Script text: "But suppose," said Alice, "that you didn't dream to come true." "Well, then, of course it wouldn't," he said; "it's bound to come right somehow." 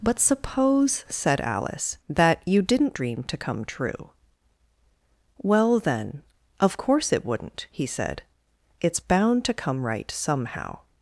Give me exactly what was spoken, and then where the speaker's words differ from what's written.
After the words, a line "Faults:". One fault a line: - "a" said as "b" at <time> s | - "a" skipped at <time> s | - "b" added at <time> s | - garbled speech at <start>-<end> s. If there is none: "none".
"But suppose," said Alice, "that you didn't dream to come true." "Well, then, of course it wouldn't," he said; "it's bound to come right somehow."
Faults:
none